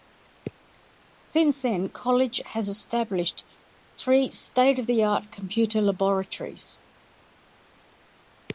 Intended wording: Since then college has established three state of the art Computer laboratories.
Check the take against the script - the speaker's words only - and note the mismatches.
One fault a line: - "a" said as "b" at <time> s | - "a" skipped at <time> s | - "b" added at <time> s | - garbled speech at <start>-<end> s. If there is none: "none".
none